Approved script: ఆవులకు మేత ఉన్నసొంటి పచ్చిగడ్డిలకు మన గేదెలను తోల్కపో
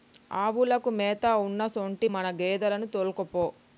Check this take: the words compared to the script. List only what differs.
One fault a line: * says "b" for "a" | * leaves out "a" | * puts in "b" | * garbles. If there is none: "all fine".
* leaves out "పచ్చిగడ్డిలకు"